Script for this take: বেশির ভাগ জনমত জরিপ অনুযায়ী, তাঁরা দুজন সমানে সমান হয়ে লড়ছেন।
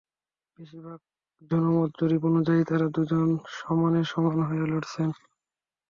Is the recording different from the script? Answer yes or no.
no